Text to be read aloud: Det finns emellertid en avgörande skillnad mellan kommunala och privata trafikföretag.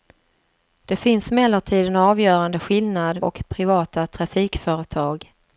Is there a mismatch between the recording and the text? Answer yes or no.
yes